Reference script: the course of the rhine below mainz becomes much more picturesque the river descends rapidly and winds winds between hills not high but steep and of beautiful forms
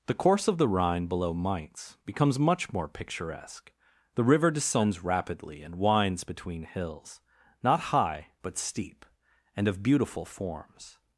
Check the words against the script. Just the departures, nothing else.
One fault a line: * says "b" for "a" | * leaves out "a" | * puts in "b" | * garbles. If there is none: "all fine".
* leaves out "winds"